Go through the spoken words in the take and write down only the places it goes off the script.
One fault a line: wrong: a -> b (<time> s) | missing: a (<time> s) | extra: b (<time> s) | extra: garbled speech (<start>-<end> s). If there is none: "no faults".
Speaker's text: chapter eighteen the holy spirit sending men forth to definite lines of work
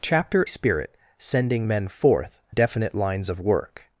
missing: eighteen the holy (0.5 s)
missing: to (2.4 s)